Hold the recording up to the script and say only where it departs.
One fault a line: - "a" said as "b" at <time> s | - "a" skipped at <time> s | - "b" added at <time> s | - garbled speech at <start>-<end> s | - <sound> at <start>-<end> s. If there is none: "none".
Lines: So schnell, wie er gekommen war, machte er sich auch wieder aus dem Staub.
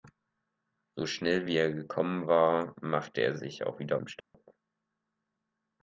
- "aus" skipped at 4.0 s
- dropout at 4.2-4.3 s